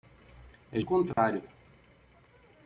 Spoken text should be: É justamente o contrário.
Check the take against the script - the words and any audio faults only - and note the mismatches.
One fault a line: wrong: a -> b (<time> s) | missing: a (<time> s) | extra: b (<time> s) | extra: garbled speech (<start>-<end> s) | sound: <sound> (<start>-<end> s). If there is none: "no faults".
missing: justamente (0.8 s)
sound: dropout (1.1-1.2 s)